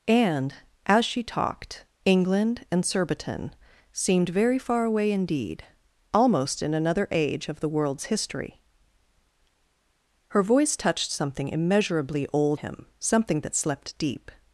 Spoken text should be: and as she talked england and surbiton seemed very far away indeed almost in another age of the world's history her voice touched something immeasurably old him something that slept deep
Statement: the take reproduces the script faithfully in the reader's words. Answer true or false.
true